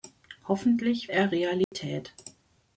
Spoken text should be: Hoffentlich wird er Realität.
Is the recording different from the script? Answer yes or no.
yes